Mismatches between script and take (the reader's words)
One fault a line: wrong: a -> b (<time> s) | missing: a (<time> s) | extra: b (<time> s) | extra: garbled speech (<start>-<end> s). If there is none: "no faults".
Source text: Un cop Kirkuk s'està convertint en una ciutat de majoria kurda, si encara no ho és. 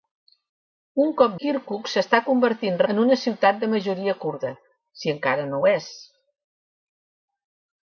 no faults